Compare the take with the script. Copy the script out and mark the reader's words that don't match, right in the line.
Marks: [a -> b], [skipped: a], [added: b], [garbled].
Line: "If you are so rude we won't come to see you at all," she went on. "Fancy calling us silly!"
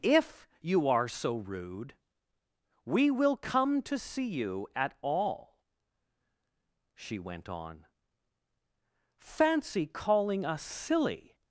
"If you are so rude we [won't -> will] come to see you at all," she went on. "Fancy calling us silly!"